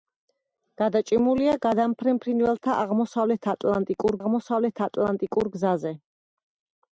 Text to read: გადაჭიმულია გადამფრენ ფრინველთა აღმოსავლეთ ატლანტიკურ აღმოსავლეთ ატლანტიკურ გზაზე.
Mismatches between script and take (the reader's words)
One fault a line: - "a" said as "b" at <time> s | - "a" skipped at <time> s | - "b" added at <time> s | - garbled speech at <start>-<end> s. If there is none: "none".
none